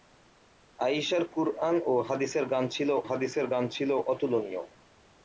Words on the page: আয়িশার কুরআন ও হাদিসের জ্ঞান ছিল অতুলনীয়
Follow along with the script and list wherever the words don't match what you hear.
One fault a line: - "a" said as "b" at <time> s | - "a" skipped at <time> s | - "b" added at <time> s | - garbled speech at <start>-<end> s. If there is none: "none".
- "হাদিসের জ্ঞান ছিল" added at 3.1 s